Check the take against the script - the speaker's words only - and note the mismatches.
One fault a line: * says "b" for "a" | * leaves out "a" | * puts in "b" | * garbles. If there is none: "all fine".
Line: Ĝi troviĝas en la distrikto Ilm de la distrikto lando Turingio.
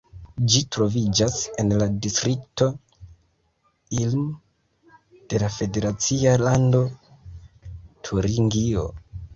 * says "federacia" for "distrikto"